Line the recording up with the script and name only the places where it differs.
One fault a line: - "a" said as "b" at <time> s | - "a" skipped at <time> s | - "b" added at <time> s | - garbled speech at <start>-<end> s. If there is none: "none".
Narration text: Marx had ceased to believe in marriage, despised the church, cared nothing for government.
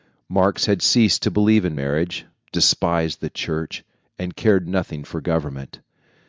- "and" added at 4.2 s